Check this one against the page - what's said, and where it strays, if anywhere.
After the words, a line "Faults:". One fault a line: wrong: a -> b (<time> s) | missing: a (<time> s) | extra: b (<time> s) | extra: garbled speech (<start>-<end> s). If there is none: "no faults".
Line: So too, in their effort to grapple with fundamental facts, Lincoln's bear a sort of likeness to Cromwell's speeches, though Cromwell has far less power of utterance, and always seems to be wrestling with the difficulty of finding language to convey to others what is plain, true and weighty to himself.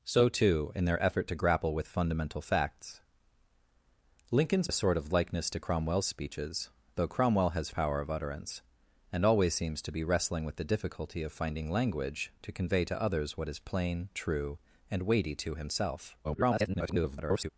So too, in their effort to grapple with fundamental facts, Lincoln's a sort of likeness to Cromwell's speeches, though Cromwell has power of utterance, and always seems to be wrestling with the difficulty of finding language to convey to others what is plain, true and weighty to himself. [garbled]
Faults:
missing: bear (4.7 s)
missing: far less (7.7 s)
extra: garbled speech (16.2-17.5 s)